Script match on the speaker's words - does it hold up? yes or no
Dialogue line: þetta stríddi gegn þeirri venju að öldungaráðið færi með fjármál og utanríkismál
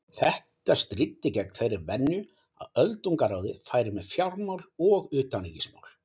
yes